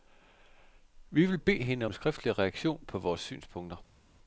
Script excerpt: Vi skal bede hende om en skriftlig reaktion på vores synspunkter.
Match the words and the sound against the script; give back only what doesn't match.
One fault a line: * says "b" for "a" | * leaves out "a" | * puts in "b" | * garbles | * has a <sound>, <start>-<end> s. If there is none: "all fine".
* says "vil" for "skal"